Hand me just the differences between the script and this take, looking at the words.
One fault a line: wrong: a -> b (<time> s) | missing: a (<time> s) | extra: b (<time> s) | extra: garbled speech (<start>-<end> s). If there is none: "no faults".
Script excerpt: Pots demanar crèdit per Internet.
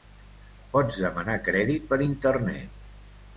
no faults